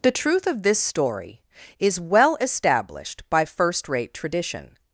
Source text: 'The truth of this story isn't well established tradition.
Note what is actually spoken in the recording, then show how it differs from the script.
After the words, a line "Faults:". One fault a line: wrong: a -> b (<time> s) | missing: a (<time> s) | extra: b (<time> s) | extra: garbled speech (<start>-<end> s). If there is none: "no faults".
'The truth of this story is well established by first rate tradition.
Faults:
wrong: isn't -> is (1.8 s)
extra: by first rate (3.3 s)